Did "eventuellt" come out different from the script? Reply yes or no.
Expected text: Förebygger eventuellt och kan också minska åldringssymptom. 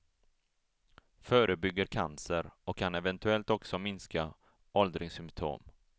yes